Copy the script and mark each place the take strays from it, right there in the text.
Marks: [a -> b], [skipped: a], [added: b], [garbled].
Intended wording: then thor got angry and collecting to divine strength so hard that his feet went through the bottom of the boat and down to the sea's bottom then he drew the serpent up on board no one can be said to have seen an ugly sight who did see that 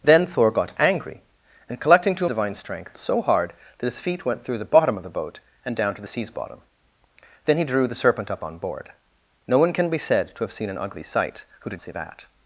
then thor got angry and collecting to divine strength so hard that his feet went through the bottom of the boat and down to the sea's bottom then he drew the serpent up on board no one can be said to have seen an ugly sight who did see that